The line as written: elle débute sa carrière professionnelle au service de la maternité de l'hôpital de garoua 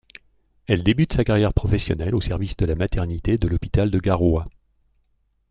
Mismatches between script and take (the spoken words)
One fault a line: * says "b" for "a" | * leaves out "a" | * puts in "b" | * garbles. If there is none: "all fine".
all fine